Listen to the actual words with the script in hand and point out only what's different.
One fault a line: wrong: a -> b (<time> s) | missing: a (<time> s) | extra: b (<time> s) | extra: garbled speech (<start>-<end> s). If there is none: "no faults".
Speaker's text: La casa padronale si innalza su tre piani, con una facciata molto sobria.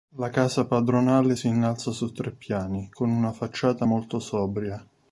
no faults